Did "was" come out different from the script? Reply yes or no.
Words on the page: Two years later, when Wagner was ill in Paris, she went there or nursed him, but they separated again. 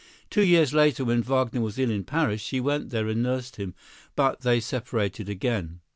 no